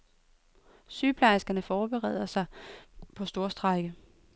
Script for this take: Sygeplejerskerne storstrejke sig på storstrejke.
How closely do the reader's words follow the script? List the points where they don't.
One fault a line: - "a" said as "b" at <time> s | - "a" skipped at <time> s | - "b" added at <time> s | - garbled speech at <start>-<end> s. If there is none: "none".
- "storstrejke" said as "forbereder" at 1.6 s